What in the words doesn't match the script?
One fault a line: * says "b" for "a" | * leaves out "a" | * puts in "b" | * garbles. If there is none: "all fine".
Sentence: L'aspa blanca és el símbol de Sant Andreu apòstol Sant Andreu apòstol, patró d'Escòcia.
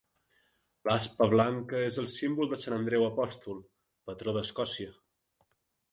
* leaves out "Sant Andreu apòstol"